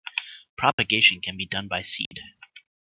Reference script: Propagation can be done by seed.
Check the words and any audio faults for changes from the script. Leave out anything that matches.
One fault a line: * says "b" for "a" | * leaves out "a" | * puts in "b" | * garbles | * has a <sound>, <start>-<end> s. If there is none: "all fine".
* has a dropout, 0.7-0.8 s
* has a dropout, 2.1-2.1 s